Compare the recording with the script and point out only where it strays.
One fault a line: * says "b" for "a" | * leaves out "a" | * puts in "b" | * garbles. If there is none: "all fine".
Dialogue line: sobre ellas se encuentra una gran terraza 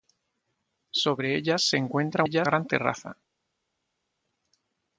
* says "ellas" for "una"